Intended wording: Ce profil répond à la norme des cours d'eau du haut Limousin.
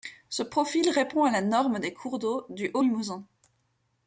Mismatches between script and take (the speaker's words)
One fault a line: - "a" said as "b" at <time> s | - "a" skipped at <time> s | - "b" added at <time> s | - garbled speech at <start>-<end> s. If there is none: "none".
none